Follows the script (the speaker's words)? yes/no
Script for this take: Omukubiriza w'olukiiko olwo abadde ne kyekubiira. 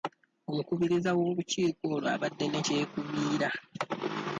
yes